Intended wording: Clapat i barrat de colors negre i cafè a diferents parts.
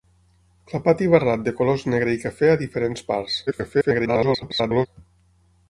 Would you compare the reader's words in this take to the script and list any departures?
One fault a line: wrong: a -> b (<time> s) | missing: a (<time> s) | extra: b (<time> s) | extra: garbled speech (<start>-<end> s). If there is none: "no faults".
extra: garbled speech (3.5-4.9 s)